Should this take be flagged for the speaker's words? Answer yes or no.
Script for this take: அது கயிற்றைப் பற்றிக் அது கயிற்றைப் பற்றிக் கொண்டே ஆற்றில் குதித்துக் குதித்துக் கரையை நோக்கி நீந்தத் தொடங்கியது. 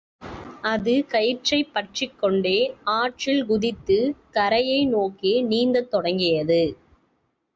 yes